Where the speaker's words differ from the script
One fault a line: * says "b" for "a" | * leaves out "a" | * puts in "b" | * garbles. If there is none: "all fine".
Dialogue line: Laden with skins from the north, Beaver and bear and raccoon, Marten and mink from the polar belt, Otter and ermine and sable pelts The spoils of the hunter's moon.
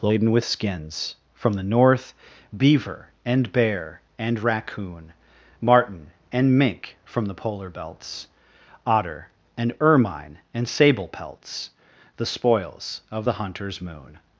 * says "belts" for "belt"